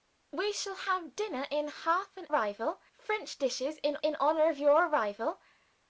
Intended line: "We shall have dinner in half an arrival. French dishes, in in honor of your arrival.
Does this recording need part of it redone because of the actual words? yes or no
no